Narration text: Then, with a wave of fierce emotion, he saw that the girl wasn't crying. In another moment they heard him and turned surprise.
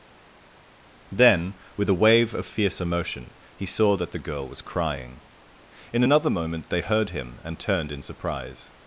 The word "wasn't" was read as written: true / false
false